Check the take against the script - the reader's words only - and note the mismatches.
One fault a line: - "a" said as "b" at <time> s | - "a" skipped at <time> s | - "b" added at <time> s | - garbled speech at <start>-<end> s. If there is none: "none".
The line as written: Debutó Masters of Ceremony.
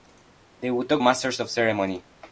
none